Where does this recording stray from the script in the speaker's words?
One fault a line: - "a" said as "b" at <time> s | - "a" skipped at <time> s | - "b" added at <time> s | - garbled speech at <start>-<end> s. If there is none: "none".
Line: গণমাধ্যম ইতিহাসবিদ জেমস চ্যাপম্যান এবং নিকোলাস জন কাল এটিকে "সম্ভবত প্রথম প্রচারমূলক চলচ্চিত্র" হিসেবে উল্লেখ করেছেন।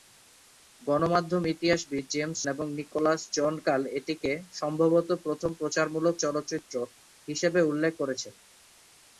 - "চ্যাপম্যান" skipped at 2.4 s